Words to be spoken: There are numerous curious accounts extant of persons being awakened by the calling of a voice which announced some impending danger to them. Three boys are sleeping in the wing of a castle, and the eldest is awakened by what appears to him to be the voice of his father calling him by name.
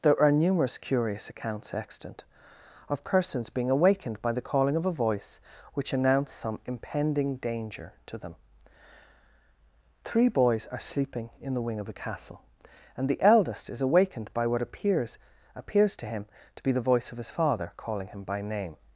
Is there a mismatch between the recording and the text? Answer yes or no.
yes